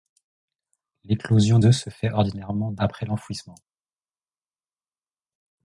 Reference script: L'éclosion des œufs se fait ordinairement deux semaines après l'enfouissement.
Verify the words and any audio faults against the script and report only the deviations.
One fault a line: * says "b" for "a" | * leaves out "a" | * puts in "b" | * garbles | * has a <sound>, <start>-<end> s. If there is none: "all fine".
* leaves out "des"
* leaves out "semaines"